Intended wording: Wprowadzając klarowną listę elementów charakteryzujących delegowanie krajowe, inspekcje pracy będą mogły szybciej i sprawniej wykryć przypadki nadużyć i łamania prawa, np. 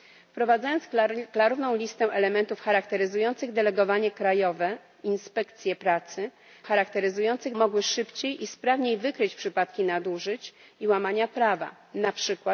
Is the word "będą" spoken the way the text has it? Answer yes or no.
no